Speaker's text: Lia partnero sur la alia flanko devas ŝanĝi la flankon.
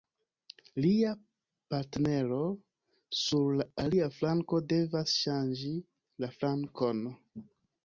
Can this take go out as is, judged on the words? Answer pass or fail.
pass